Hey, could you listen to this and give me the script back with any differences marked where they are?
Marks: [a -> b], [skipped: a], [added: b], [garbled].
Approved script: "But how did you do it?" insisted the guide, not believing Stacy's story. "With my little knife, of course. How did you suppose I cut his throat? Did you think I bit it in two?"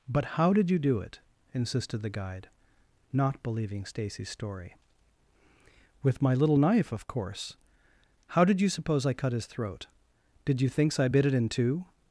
"But how did you do it?" insisted the guide, not believing Stacy's story. "With my little knife, of course. How did you suppose I cut his throat? Did you [think -> thinks] I bit it in two?"